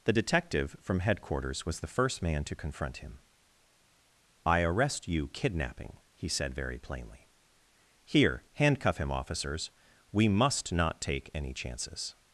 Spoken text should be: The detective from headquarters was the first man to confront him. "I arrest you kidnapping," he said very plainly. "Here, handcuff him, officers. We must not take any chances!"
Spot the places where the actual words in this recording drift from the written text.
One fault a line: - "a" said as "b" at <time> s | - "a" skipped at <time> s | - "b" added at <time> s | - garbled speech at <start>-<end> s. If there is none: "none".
none